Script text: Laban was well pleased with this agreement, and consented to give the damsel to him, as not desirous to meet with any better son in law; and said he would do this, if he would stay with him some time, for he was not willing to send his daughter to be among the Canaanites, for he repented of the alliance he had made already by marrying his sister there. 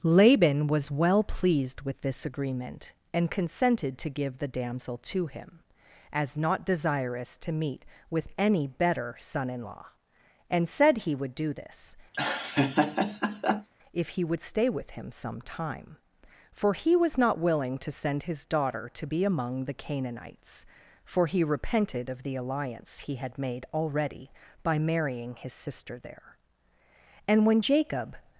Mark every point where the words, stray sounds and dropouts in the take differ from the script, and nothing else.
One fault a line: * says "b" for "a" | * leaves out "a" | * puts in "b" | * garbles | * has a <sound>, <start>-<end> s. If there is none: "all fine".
* has a laugh, 12.1-13.7 s
* puts in "And when Jacob"